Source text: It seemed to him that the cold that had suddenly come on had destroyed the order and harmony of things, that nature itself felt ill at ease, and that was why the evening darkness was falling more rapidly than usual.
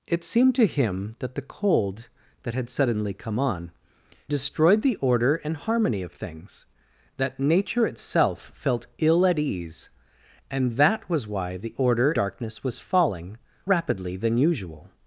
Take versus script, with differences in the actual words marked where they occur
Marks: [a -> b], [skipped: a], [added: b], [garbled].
It seemed to him that the cold that had suddenly come on [skipped: had] destroyed the order and harmony of things, that nature itself felt ill at ease, and that was why the [evening -> order] darkness was falling [skipped: more] rapidly than usual.